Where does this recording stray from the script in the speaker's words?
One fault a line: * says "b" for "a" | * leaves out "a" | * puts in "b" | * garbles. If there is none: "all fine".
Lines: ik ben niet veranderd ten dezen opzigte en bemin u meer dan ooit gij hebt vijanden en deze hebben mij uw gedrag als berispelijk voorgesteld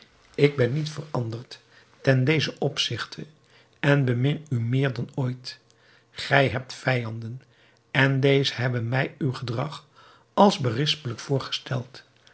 all fine